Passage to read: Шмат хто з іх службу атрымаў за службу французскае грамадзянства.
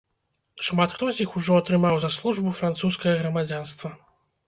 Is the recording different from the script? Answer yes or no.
yes